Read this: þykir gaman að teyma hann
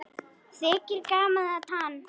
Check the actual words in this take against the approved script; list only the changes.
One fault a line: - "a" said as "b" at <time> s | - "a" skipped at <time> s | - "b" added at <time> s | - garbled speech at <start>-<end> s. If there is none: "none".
- "teyma" skipped at 1.7 s